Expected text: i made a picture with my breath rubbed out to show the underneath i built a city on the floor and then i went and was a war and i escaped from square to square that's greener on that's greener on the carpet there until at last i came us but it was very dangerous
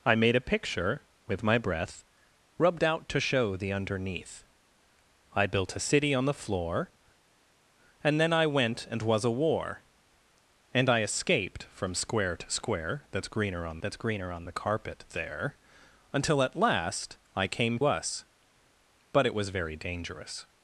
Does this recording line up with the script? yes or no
yes